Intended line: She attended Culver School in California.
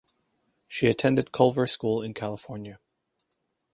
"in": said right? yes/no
yes